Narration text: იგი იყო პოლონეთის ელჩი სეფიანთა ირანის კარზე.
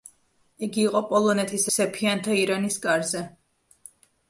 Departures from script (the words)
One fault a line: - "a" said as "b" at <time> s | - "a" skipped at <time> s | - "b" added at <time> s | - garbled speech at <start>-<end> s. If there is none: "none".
- "ელჩი" skipped at 1.7 s